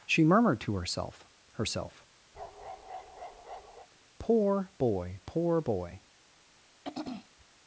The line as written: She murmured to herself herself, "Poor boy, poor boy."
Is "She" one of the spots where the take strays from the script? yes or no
no